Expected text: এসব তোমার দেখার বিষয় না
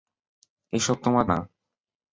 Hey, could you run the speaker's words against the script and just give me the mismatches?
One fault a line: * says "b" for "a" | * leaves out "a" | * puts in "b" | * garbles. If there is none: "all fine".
* leaves out "দেখার বিষয়"